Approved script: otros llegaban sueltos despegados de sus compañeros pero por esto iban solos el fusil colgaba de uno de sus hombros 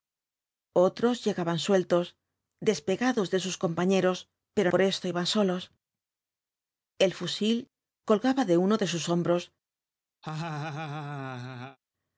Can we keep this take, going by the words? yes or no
yes